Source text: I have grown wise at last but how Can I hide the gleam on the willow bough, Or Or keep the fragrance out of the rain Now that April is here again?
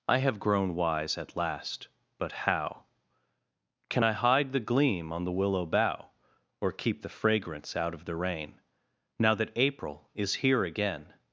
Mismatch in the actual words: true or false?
true